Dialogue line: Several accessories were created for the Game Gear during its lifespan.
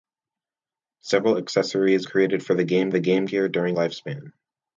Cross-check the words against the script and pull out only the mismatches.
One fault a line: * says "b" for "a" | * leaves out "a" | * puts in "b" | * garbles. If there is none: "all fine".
* leaves out "were"
* puts in "the Game"
* leaves out "its"